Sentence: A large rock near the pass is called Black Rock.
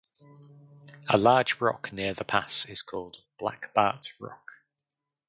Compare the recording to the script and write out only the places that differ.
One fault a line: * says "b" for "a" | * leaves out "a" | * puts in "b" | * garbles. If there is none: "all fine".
* puts in "Bart"